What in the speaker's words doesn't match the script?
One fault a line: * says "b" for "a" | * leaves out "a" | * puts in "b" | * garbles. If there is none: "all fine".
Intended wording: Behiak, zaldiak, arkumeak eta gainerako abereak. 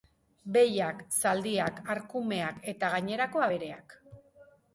all fine